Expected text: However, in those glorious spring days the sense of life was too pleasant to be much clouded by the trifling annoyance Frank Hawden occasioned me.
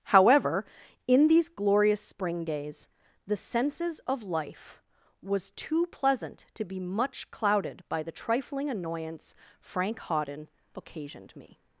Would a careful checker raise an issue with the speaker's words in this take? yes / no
yes